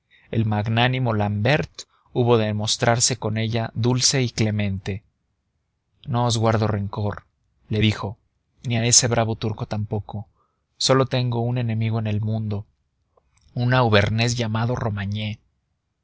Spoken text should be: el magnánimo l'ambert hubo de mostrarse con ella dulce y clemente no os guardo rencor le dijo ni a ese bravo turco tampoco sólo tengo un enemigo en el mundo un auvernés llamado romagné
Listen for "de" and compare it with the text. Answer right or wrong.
right